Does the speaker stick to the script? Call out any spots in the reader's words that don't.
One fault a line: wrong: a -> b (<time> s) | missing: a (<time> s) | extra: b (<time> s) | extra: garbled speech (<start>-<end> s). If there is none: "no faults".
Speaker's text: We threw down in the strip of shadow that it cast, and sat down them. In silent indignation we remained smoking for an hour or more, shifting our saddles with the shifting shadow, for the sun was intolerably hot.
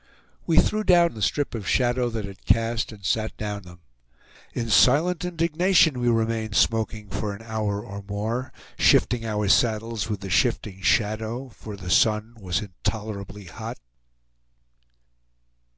no faults